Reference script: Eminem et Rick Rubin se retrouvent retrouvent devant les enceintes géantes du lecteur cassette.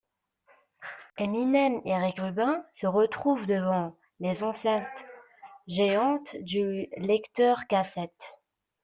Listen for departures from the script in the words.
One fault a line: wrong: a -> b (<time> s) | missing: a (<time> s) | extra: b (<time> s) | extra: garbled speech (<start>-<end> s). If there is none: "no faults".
missing: retrouvent (3.5 s)